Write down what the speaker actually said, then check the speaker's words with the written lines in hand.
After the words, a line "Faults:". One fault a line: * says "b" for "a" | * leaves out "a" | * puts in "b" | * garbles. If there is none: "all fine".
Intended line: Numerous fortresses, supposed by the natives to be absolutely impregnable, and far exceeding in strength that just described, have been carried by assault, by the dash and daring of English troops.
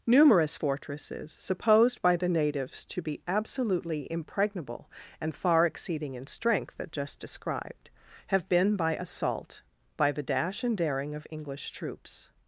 Numerous fortresses, supposed by the natives to be absolutely impregnable, and far exceeding in strength that just described, have been by assault, by the dash and daring of English troops.
Faults:
* leaves out "carried"